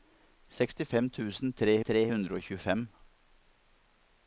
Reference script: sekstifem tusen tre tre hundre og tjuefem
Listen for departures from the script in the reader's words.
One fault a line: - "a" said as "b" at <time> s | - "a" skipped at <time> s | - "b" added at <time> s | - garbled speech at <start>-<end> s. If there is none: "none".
none